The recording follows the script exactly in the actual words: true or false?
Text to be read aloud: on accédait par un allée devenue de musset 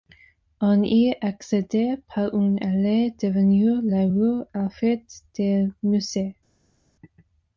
false